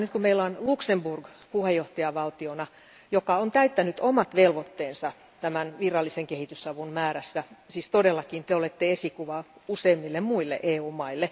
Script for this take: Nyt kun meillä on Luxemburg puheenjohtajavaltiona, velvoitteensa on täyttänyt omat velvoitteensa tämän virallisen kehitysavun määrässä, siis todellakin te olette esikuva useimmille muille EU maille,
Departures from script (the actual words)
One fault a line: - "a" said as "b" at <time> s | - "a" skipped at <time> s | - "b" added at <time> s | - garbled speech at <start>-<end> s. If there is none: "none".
- "velvoitteensa" said as "joka" at 3.1 s